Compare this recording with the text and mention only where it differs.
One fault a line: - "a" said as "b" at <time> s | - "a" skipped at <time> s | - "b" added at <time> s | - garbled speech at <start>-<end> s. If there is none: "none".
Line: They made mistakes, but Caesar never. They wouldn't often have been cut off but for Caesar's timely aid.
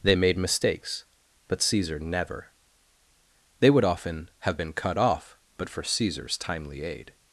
- "wouldn't" said as "would" at 3.7 s